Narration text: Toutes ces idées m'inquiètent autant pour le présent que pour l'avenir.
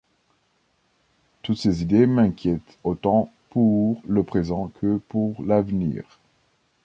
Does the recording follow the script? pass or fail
pass